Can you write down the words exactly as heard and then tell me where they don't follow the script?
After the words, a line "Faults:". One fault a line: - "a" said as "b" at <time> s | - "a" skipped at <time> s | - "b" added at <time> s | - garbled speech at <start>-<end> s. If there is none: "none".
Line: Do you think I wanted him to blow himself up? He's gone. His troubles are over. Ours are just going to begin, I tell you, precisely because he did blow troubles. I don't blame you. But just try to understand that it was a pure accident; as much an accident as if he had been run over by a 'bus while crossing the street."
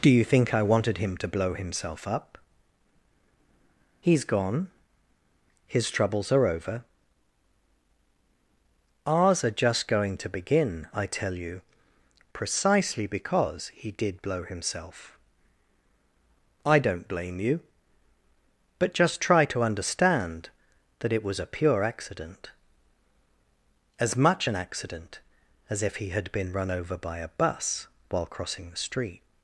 Do you think I wanted him to blow himself up? He's gone. His troubles are over. Ours are just going to begin, I tell you, precisely because he did blow himself. I don't blame you. But just try to understand that it was a pure accident; as much an accident as if he had been run over by a 'bus while crossing the street."
Faults:
- "troubles" said as "himself" at 14.4 s